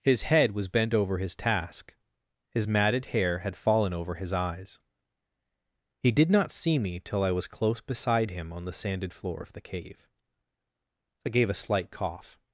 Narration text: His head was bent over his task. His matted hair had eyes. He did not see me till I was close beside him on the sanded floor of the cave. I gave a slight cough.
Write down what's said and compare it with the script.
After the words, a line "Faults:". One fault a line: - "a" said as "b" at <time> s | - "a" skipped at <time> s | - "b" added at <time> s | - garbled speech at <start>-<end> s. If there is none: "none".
His head was bent over his task. His matted hair had fallen over his eyes. He did not see me till I was close beside him on the sanded floor of the cave. I gave a slight cough.
Faults:
- "fallen over his" added at 3.5 s